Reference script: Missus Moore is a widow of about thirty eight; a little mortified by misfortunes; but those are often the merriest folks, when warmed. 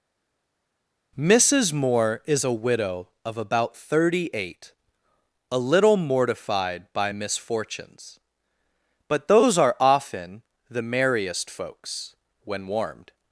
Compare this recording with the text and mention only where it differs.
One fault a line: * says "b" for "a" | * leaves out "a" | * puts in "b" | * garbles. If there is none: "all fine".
all fine